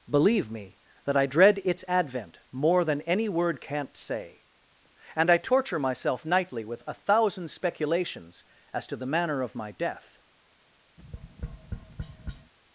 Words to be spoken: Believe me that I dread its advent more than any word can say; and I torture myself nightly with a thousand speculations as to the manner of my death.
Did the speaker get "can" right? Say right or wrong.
wrong